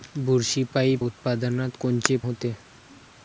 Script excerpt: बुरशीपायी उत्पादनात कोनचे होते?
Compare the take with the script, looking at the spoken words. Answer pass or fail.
pass